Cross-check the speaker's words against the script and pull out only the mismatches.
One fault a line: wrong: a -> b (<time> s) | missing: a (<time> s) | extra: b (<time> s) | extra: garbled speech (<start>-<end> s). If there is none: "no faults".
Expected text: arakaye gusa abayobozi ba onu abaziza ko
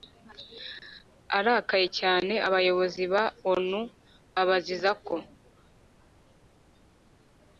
wrong: gusa -> cyane (2.0 s)